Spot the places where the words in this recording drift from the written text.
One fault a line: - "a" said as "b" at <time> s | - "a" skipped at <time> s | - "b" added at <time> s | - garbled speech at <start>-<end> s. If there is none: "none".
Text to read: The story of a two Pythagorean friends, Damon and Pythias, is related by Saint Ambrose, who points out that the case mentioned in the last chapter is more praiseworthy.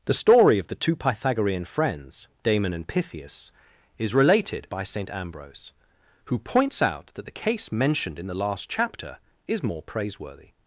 - "a" said as "the" at 0.7 s